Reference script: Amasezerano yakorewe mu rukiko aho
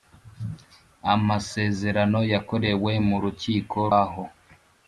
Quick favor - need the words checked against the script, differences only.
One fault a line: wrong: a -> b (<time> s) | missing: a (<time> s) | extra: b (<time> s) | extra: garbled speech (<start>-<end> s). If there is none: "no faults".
no faults